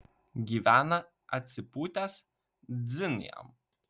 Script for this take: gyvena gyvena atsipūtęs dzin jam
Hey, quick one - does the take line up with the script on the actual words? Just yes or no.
no